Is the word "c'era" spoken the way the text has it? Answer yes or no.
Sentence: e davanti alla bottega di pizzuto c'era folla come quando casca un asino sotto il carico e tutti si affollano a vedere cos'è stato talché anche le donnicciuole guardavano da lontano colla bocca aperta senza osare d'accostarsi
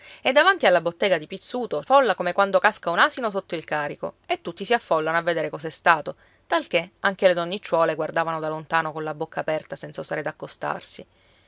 no